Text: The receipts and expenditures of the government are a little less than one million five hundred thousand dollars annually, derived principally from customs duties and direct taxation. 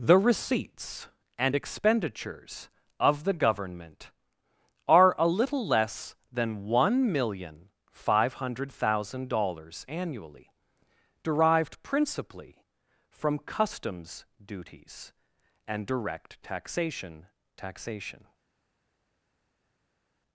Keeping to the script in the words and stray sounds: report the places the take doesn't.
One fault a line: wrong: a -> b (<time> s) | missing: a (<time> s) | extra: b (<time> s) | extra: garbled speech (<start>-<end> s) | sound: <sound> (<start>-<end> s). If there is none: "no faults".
extra: taxation (17.6 s)